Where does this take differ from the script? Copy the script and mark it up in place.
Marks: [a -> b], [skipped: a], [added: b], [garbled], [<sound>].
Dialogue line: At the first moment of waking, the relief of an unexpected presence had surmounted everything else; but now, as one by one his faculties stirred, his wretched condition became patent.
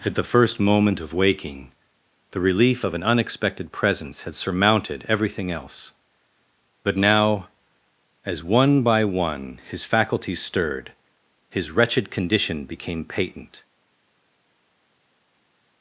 At the first moment of waking, the relief of an unexpected presence had surmounted everything else; but now, as one by one his faculties stirred, his wretched condition became patent.